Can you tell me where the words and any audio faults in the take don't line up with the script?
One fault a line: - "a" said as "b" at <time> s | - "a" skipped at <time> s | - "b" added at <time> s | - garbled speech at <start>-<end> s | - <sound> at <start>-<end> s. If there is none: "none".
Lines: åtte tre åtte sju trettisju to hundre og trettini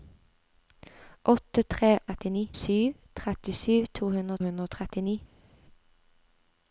- "åtte" said as "trettini" at 2.1 s
- "hundre" added at 4.5 s